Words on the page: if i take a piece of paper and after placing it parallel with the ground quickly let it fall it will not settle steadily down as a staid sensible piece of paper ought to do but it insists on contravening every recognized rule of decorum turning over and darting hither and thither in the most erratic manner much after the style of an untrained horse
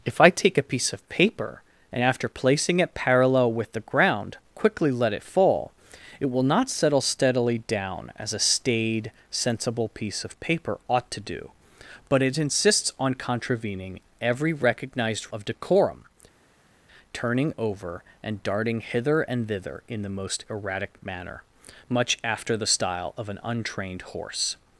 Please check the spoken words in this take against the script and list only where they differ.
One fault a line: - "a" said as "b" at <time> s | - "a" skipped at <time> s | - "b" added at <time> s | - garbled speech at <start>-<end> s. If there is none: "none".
- "rule" skipped at 15.3 s